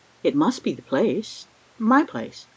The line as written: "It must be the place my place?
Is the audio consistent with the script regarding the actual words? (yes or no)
yes